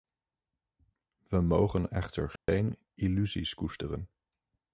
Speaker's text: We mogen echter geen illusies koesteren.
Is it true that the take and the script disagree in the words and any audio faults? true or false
true